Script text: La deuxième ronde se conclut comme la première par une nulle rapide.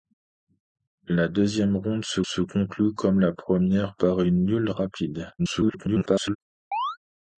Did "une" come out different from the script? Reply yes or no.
no